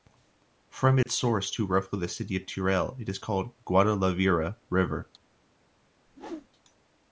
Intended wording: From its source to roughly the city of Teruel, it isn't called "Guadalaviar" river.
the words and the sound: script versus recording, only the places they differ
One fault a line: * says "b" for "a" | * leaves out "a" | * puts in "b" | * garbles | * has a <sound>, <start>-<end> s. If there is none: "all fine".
* has a dropout, 1.0-1.1 s
* says "is" for "isn't"
* has a whoosh, 6.1-6.5 s